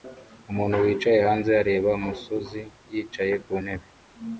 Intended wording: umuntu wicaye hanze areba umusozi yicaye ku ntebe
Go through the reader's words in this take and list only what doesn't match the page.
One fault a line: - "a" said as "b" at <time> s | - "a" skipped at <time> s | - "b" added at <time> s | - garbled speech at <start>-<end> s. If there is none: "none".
none